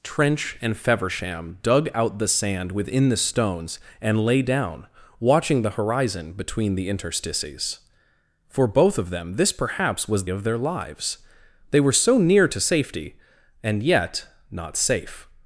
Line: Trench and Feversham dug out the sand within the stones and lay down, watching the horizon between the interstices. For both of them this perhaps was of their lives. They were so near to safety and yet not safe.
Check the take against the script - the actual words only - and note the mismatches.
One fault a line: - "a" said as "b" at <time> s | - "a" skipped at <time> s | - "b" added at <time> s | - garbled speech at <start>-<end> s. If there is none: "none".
none